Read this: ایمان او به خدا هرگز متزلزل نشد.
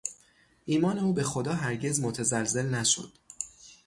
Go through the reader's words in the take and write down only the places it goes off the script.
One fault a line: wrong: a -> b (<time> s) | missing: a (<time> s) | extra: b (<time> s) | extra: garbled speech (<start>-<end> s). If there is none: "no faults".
no faults